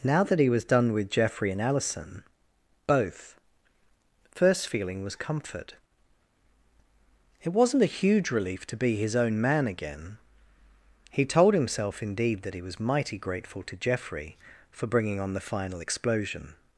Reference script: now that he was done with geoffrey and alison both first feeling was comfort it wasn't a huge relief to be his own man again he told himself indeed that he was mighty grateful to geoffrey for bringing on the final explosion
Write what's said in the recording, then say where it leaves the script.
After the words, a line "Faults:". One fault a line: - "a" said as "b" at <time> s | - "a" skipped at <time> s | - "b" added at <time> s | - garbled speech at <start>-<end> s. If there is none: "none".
now that he was done with geoffrey and alison both first feeling was comfort it wasn't a huge relief to be his own man again he told himself indeed that he was mighty grateful to geoffrey for bringing on the final explosion
Faults:
none